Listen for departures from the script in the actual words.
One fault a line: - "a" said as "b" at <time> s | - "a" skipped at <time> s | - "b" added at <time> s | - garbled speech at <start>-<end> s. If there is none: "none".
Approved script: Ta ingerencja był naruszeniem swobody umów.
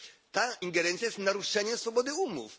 - "był" said as "jest" at 1.1 s